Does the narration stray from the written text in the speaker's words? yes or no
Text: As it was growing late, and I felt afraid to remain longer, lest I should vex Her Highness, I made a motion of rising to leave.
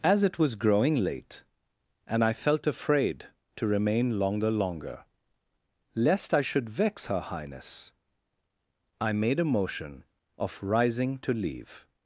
yes